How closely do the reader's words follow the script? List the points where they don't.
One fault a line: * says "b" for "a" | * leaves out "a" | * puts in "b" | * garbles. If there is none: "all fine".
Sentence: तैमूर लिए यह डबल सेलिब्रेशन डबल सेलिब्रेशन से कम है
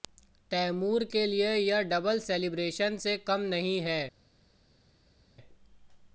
* puts in "के"
* leaves out "डबल सेलिब्रेशन"
* puts in "नहीं"